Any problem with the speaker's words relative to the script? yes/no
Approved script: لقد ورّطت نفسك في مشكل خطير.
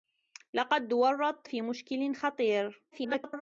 yes